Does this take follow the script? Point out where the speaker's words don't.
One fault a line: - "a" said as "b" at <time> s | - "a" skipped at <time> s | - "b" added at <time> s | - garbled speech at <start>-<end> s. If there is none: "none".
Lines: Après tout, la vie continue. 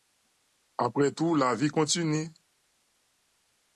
none